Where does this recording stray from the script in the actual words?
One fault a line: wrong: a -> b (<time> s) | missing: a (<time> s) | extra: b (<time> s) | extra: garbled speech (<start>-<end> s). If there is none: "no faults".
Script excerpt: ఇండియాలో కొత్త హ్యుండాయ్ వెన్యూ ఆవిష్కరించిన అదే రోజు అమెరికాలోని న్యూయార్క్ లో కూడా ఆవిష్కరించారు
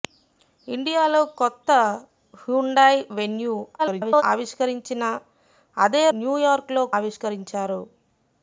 extra: garbled speech (3.8-4.2 s)
missing: రోజు అమెరికాలోని (6.0 s)
missing: కూడా (6.8 s)